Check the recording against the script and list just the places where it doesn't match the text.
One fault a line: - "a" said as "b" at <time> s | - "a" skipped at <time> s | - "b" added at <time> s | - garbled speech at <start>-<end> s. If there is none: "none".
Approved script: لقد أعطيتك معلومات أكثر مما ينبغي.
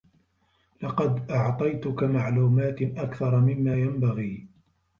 none